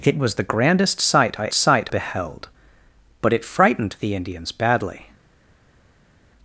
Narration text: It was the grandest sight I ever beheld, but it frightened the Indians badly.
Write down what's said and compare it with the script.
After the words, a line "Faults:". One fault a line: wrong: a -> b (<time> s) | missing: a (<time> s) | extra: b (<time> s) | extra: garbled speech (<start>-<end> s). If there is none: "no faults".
It was the grandest sight I sight beheld, but it frightened the Indians badly.
Faults:
wrong: ever -> sight (1.5 s)